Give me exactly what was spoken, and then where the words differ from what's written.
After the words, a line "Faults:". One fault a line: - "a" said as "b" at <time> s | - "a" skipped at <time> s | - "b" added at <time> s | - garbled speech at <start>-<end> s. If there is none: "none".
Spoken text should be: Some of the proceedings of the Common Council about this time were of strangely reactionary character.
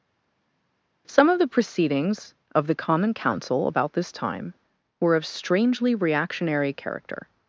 Some of the proceedings of the Common Council about this time were of strangely reactionary character.
Faults:
none